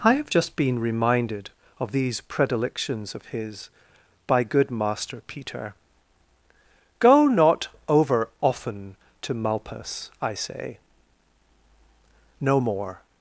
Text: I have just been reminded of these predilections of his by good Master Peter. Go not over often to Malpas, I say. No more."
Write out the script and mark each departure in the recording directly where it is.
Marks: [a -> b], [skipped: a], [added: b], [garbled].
I have just been reminded of these predilections of his by good Master Peter. Go not over often to Malpas, I say. No more."